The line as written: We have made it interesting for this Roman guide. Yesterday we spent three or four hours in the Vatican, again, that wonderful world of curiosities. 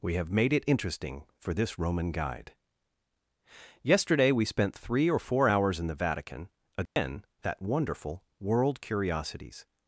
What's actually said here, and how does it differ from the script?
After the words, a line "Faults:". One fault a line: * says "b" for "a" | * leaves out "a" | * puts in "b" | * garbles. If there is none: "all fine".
We have made it interesting for this Roman guide. Yesterday we spent three or four hours in the Vatican, again, that wonderful world curiosities.
Faults:
* leaves out "of"